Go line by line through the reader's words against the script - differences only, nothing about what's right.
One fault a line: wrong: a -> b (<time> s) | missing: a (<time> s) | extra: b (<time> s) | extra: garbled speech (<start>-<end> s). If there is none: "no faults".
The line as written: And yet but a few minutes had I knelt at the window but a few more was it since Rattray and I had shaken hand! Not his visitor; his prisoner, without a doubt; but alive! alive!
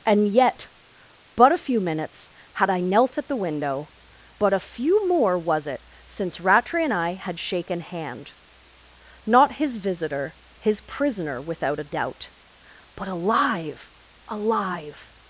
no faults